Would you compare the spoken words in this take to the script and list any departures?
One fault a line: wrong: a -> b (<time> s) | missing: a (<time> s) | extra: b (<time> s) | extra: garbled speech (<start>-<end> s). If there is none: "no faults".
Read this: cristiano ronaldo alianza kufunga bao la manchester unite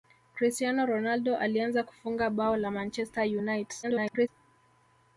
extra: garbled speech (3.8-4.3 s)